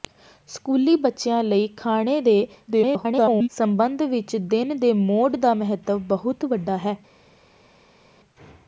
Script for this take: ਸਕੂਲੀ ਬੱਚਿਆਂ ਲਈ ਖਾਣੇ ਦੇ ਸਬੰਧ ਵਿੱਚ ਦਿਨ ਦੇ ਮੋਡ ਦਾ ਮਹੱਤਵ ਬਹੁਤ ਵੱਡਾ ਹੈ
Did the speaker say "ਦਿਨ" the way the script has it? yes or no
yes